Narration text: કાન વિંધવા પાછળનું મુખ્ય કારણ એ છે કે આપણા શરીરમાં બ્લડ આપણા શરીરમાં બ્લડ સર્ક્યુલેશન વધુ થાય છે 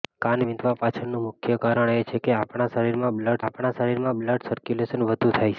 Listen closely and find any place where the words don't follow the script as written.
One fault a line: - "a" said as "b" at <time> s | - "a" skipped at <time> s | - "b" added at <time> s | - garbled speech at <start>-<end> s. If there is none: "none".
none